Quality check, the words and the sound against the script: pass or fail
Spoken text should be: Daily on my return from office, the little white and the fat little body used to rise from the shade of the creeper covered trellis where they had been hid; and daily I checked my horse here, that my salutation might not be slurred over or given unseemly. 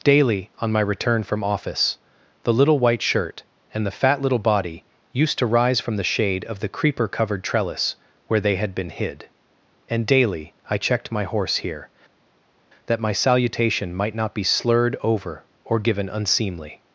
fail